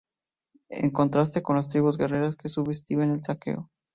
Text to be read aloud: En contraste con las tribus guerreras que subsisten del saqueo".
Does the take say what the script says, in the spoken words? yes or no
yes